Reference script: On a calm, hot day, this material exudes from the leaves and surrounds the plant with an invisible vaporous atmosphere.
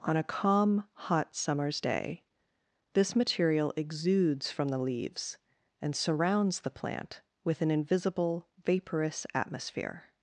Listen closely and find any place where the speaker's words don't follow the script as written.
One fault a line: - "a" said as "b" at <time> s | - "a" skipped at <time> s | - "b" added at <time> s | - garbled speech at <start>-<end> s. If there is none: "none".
- "summer's" added at 1.4 s